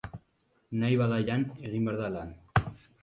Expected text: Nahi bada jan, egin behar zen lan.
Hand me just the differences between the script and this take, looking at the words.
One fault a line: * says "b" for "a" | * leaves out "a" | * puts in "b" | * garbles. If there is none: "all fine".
* says "da" for "zen"